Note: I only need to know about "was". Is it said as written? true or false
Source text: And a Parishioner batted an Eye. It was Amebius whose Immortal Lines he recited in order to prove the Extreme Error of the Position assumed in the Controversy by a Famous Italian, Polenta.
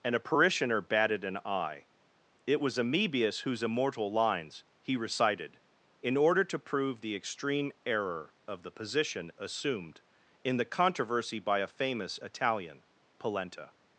true